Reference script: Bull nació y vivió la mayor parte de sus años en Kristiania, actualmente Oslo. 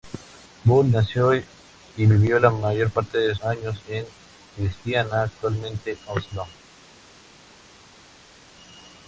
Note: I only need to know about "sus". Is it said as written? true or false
false